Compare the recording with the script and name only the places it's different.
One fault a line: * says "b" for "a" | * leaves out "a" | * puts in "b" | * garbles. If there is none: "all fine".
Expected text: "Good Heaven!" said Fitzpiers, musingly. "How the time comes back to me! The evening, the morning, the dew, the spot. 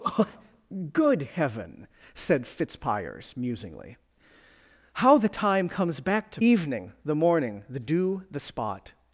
* leaves out "me The"